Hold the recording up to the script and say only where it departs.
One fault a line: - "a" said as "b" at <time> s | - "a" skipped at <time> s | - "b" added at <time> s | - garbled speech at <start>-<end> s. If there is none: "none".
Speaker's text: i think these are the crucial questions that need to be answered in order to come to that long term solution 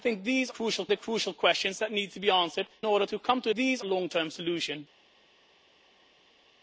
- "are" said as "crucial" at 0.5 s
- "in" skipped at 2.7 s
- "that" said as "these" at 3.5 s